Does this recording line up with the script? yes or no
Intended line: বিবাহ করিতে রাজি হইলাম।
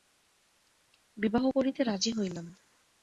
yes